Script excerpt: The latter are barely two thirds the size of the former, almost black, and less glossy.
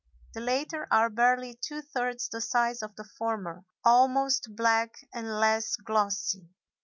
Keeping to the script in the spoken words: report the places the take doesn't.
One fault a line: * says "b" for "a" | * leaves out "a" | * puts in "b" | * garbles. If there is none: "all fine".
all fine